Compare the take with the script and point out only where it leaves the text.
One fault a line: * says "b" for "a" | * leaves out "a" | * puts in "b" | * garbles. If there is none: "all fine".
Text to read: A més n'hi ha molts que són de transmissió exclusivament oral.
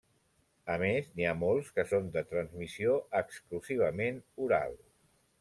all fine